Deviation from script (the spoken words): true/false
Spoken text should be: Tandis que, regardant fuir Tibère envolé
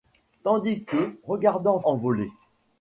true